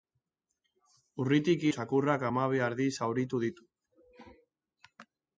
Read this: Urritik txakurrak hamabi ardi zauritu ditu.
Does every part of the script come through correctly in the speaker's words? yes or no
yes